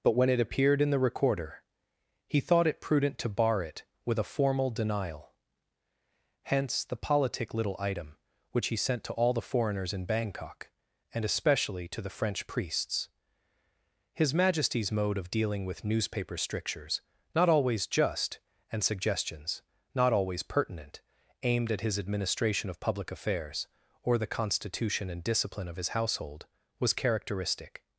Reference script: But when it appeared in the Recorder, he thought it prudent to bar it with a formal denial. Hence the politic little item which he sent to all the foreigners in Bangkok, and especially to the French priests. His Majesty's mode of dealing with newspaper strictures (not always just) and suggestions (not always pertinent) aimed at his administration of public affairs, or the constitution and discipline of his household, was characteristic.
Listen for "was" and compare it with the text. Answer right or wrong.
right